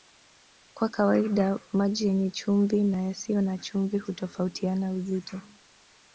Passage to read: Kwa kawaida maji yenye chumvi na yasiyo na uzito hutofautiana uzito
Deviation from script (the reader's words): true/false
true